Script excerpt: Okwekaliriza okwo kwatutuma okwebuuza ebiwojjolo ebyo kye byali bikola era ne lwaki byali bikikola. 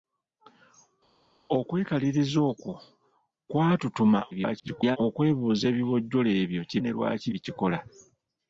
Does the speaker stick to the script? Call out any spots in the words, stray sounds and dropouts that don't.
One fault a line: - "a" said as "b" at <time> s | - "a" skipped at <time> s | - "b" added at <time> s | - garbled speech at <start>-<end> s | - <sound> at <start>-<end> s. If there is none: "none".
- garbled speech at 4.3-5.0 s
- "byali bikola era" skipped at 6.8 s
- "byali" skipped at 7.3 s